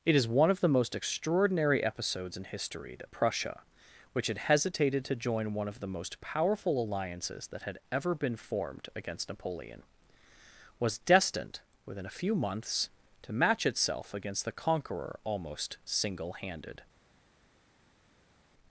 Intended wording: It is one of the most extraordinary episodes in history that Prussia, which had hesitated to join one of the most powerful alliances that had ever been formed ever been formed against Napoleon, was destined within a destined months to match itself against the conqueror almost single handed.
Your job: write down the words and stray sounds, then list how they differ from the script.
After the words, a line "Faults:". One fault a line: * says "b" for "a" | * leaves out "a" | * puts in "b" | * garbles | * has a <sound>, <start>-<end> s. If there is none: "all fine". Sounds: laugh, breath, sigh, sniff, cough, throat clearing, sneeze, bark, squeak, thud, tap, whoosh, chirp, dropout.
It is one of the most extraordinary episodes in history that Prussia, which had hesitated to join one of the most powerful alliances that had ever been formed against Napoleon, was destined within a few months to match itself against the conqueror almost single handed.
Faults:
* leaves out "ever been formed"
* says "few" for "destined"